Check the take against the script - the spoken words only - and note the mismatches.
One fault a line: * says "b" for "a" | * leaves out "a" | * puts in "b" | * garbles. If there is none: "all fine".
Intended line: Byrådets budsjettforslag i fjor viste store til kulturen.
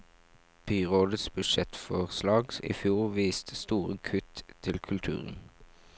* puts in "kutt"